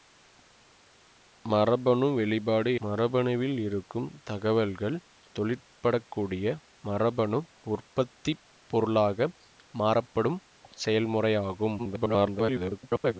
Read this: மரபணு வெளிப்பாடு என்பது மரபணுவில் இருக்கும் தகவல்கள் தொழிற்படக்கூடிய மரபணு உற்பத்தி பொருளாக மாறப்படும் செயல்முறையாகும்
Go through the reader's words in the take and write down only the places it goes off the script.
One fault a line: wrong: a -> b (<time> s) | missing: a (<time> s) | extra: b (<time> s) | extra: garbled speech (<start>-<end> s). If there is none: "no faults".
missing: என்பது (2.7 s)
extra: garbled speech (11.8-13.2 s)